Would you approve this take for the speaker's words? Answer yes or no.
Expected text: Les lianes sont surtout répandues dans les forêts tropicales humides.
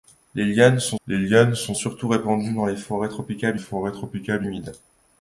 no